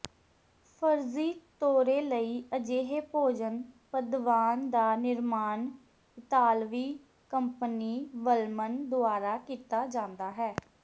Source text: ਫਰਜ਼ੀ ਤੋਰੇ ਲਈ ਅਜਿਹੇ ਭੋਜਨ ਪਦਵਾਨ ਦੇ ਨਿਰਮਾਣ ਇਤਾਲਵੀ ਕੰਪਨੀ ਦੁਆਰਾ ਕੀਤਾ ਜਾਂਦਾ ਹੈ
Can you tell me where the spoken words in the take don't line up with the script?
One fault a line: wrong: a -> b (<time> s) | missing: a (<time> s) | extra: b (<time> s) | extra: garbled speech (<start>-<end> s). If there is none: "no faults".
wrong: ਦੇ -> ਦਾ (4.7 s)
extra: ਵਲਮਨ (8.2 s)